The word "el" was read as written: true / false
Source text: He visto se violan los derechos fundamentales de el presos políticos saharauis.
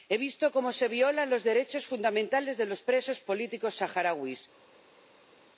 false